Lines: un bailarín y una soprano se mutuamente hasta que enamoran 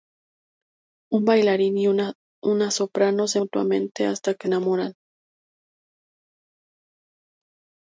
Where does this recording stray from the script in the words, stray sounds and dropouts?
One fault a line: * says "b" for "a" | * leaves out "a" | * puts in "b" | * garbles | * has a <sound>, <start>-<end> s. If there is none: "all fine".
all fine